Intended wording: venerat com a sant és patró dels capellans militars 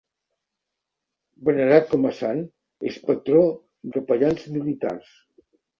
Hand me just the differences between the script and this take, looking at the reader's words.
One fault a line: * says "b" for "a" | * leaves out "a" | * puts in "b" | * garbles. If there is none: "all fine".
* leaves out "dels"